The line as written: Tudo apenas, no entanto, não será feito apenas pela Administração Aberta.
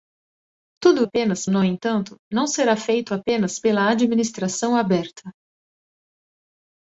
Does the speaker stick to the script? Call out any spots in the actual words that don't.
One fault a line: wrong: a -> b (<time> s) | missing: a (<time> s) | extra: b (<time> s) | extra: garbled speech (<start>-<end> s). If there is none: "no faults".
no faults